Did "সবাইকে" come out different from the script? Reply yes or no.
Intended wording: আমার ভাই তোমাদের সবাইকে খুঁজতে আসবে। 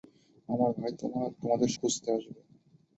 yes